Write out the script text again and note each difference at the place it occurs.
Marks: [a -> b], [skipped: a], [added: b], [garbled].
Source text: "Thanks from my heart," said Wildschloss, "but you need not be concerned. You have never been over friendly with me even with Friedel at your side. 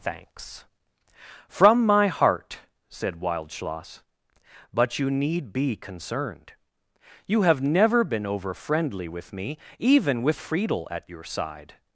"Thanks from my heart," said Wildschloss, "but you need [skipped: not] be concerned. You have never been over friendly with me even with Friedel at your side.